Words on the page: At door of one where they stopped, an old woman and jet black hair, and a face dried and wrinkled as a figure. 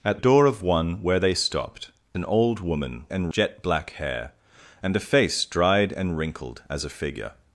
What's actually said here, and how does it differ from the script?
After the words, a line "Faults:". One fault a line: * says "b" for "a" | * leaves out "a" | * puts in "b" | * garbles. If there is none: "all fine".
At door of one where they stopped, an old woman and jet black hair, and a face dried and wrinkled as a figure.
Faults:
all fine